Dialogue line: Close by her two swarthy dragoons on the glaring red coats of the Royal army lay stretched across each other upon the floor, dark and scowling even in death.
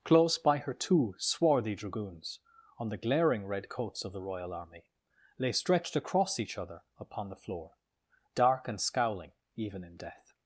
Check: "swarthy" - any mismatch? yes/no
no